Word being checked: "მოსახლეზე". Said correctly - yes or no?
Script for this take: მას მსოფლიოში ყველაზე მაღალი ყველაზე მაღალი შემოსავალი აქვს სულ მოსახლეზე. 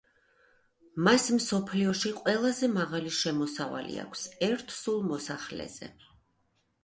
yes